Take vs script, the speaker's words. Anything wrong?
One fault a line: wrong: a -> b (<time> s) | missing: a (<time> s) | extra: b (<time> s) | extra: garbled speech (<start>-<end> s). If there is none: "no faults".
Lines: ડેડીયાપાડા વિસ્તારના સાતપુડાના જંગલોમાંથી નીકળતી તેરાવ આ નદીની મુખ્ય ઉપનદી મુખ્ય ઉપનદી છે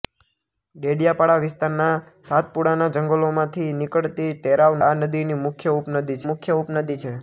no faults